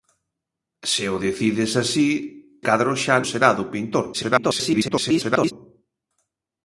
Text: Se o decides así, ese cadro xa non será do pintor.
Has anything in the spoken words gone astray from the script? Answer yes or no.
yes